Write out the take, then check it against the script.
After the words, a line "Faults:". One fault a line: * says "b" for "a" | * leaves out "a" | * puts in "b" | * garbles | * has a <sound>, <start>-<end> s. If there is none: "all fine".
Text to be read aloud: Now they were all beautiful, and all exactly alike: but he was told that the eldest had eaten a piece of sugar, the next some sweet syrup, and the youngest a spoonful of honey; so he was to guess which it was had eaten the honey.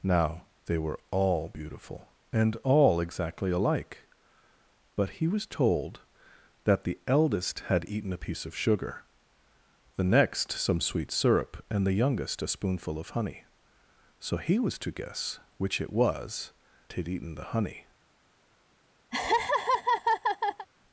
Now they were all beautiful, and all exactly alike: but he was told that the eldest had eaten a piece of sugar, the next some sweet syrup, and the youngest a spoonful of honey; so he was to guess which it was had eaten the honey.
Faults:
* has a laugh, 19.1-20.7 s